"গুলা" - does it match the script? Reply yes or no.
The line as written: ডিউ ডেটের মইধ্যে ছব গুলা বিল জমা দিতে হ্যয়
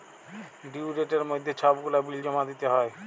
yes